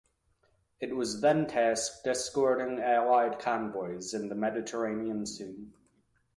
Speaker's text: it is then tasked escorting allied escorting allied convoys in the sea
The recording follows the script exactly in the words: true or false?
false